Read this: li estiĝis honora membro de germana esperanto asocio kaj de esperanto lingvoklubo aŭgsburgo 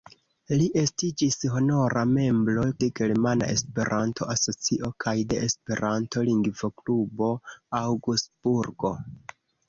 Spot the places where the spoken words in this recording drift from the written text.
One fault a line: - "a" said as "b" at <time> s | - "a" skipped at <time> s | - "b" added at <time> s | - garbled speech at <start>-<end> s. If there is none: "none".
none